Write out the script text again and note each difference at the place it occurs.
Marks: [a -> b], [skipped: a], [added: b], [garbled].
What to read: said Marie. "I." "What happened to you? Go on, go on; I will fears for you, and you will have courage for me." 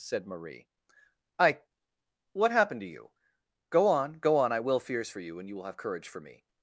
said Marie. "I." "What happened to you? Go on, go on; I will fears for you, and you will have courage for me."